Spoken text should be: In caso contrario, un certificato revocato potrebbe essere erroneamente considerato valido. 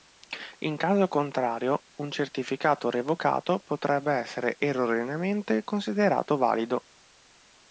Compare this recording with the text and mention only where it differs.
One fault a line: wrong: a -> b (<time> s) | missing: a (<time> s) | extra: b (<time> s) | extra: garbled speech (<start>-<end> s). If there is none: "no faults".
no faults